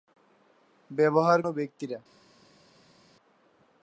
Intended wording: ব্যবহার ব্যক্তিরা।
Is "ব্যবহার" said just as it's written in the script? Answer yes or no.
yes